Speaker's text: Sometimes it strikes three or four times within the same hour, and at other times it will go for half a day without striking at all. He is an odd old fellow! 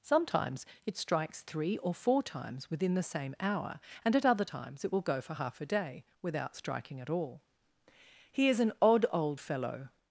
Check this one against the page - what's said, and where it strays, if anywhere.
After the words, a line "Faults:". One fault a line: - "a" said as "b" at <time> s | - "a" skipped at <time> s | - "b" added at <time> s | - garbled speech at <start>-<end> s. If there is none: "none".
Sometimes it strikes three or four times within the same hour, and at other times it will go for half a day without striking at all. He is an odd old fellow!
Faults:
none